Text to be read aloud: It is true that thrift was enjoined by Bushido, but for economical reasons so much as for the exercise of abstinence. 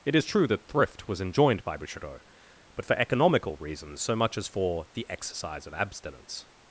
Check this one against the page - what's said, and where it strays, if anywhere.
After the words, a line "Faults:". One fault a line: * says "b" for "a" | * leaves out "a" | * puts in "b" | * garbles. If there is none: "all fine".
It is true that thrift was enjoined by Bushido, but for economical reasons so much as for the exercise of abstinence.
Faults:
all fine